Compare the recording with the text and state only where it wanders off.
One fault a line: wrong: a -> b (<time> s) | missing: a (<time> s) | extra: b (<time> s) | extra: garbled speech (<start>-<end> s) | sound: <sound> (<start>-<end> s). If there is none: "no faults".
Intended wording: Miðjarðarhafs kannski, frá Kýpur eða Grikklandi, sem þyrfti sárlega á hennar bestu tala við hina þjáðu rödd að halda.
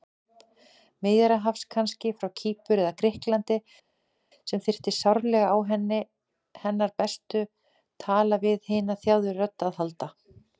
no faults